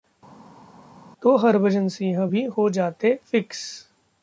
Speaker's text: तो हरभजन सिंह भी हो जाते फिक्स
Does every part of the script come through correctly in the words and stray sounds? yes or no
yes